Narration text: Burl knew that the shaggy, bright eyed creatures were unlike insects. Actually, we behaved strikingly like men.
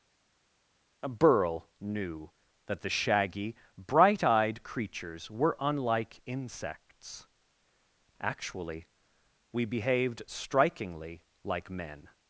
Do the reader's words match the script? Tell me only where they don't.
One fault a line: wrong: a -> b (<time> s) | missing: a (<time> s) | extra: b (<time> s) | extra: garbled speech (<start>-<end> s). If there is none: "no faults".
no faults